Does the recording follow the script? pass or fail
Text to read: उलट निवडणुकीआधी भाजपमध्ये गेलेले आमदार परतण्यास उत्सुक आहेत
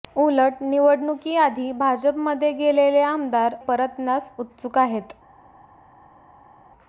pass